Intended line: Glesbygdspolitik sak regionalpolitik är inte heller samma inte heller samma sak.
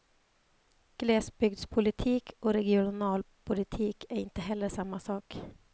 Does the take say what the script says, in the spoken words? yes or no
no